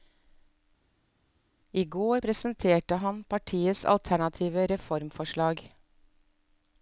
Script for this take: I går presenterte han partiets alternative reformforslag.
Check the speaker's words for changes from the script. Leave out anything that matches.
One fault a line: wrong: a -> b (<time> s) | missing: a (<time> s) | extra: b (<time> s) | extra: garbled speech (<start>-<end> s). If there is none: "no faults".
no faults